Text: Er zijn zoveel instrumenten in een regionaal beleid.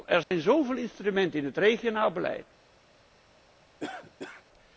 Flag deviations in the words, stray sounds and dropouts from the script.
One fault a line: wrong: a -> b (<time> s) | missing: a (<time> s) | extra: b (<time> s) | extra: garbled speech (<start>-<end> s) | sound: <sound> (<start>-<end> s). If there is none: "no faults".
sound: dropout (0.2-0.3 s)
wrong: een -> het (1.5 s)
sound: cough (3.8-4.4 s)